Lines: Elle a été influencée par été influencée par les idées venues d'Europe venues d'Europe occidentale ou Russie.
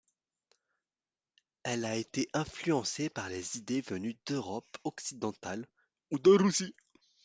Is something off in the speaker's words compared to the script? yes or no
yes